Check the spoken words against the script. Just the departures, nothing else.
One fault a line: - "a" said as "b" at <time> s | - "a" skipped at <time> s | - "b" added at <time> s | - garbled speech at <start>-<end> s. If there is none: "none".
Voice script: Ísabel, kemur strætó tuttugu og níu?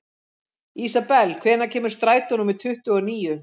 - "hvenær" added at 1.4 s
- "númer" added at 2.4 s